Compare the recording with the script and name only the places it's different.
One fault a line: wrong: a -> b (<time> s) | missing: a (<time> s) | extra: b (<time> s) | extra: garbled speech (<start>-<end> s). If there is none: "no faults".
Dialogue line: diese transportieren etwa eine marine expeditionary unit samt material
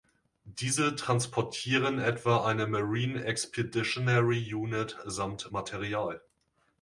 no faults